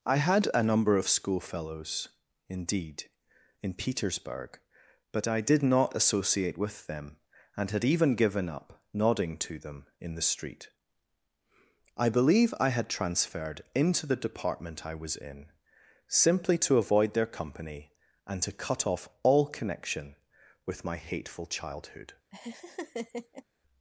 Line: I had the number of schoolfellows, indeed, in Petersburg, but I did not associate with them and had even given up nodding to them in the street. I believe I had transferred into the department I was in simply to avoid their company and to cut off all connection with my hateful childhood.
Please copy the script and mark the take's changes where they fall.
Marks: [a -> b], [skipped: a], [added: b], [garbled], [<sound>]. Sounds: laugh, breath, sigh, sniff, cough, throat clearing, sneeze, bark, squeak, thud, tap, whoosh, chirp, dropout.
I had [the -> a] number of schoolfellows, indeed, in Petersburg, but I did not associate with them and had even given up nodding to them in the street. I believe I had transferred into the department I was in simply to avoid their company and to cut off all connection with my hateful childhood. [laugh]